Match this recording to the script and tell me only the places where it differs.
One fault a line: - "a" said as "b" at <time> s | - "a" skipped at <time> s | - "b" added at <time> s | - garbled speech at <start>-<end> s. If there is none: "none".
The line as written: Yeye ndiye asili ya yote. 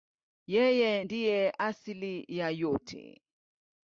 none